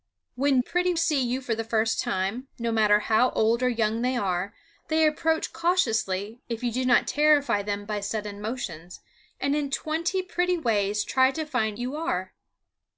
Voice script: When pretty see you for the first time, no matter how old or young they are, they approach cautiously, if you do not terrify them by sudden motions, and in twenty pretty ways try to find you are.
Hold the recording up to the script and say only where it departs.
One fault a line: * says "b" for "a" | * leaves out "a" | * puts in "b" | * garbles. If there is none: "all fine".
all fine